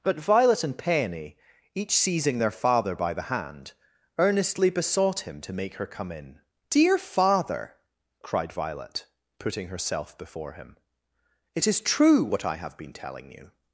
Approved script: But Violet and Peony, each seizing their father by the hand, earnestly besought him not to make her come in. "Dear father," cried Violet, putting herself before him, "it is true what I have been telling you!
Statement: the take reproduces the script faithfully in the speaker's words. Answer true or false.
false